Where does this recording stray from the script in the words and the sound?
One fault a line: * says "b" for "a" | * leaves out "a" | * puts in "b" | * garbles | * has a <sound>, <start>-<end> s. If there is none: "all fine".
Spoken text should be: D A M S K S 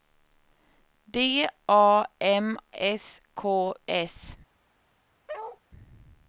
* has a bark, 5.3-5.6 s